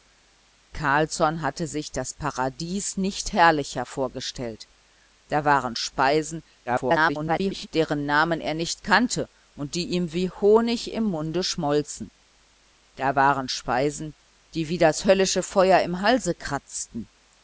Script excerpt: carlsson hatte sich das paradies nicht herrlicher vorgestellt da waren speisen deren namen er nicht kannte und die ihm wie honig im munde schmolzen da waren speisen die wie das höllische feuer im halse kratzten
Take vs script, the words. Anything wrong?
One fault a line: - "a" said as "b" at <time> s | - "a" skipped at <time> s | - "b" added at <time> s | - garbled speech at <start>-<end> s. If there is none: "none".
- garbled speech at 6.7-7.7 s